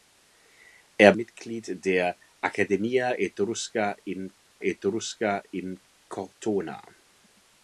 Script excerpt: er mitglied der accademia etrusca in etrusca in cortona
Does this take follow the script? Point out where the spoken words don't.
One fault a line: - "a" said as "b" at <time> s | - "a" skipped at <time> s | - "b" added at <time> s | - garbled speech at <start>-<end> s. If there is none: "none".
none